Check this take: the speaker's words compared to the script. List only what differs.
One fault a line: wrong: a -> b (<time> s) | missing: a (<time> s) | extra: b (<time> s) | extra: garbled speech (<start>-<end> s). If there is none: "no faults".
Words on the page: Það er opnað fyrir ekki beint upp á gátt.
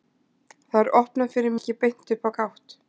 no faults